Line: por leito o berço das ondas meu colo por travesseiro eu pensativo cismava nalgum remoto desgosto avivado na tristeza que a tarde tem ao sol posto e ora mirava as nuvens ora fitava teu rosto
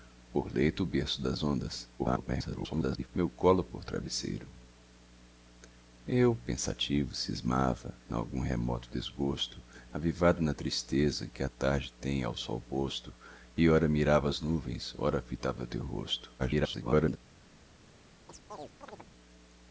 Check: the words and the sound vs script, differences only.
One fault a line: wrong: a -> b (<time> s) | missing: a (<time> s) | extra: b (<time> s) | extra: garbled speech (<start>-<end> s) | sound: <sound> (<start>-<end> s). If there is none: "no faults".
extra: garbled speech (2.0-3.1 s)
extra: garbled speech (16.4-17.2 s)
sound: chirp (18.3-19.1 s)